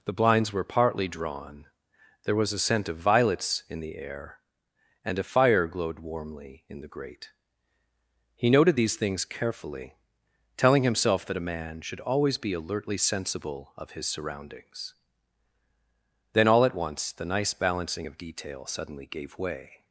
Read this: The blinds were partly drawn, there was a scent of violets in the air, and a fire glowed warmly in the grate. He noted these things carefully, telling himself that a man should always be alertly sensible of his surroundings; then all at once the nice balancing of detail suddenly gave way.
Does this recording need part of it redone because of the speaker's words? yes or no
no